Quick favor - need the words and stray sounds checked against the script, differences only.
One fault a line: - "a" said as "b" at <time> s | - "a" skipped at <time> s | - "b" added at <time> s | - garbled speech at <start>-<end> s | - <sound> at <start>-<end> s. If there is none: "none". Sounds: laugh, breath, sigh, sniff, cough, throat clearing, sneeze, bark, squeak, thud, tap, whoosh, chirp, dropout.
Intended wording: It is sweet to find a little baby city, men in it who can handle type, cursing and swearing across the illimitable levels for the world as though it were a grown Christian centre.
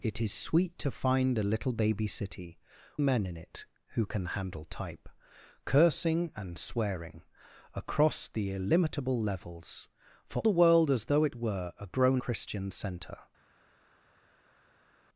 none